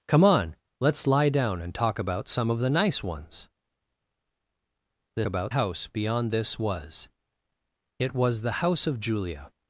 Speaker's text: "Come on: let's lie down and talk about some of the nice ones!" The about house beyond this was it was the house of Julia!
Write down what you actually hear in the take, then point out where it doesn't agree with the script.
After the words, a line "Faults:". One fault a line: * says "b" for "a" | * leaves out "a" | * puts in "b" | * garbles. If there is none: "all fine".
"Come on: let's lie down and talk about some of the nice ones!" The about house beyond this was it was the house of Julia!
Faults:
all fine